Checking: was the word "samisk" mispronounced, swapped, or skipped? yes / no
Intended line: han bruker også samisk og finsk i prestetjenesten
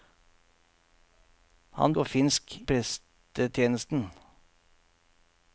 yes